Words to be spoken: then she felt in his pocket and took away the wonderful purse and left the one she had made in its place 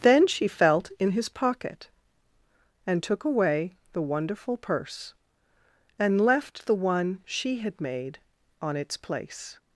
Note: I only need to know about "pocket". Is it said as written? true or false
true